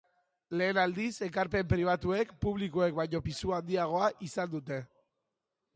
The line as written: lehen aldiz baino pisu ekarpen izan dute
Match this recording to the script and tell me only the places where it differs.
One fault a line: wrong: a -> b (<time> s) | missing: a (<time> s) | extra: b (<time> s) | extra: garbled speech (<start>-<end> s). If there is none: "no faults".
extra: ekarpen pribatuek publikoek (1.3 s)
wrong: ekarpen -> handiagoa (3.6 s)